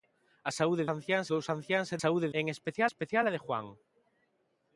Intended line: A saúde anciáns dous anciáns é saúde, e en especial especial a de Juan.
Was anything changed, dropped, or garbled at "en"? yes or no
no